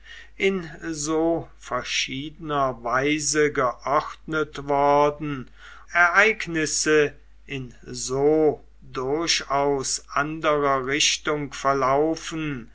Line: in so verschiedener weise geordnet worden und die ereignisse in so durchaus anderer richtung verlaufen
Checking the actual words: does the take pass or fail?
fail